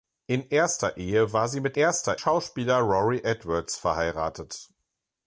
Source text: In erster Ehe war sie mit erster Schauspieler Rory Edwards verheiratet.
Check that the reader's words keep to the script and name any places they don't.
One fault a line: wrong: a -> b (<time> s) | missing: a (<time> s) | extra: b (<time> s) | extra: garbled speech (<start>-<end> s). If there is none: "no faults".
no faults